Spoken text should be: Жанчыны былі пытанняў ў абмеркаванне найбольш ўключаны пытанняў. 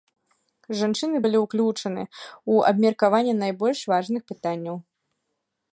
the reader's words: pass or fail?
fail